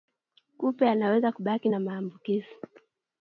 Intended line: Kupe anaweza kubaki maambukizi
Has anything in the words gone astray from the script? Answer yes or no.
yes